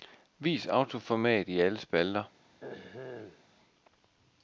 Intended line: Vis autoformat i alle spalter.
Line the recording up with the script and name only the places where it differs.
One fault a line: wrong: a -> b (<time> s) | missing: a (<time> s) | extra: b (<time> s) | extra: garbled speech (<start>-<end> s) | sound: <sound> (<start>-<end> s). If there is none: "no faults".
sound: throat clearing (2.6-3.4 s)